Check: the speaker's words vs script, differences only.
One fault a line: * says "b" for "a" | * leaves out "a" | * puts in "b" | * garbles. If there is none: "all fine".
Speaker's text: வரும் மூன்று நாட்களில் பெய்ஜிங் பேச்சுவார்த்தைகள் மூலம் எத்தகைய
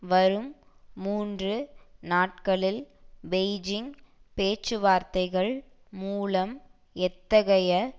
all fine